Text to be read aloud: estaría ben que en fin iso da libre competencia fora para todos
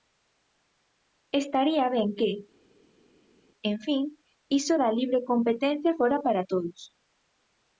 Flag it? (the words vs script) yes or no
no